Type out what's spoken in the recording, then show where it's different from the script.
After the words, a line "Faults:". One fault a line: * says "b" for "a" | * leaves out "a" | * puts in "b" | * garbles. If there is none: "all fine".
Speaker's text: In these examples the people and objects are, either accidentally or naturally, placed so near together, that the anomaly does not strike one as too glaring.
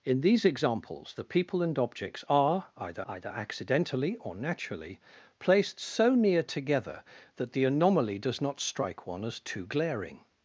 In these examples the people and objects are, either either accidentally or naturally, placed so near together, that the anomaly does not strike one as too glaring.
Faults:
* puts in "either"